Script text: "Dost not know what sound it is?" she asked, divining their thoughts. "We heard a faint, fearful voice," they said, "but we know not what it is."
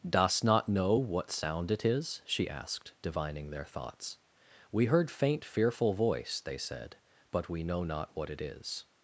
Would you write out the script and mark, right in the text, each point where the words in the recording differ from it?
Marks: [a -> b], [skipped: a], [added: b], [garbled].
"Dost not know what sound it is?" she asked, divining their thoughts. "We heard [skipped: a] faint, fearful voice," they said, "but we know not what it is."